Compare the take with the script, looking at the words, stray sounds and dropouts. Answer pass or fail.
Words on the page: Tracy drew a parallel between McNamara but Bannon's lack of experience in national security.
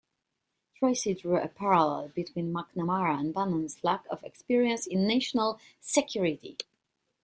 fail